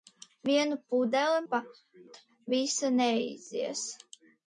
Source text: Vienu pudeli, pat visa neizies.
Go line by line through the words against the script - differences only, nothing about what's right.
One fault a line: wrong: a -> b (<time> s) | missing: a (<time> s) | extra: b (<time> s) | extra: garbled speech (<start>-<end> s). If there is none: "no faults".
no faults